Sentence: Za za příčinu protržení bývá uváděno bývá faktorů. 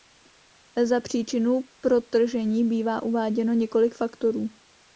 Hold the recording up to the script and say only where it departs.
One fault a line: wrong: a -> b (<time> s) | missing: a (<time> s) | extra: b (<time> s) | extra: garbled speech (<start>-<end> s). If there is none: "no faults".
missing: za (1.0 s)
wrong: bývá -> několik (3.5 s)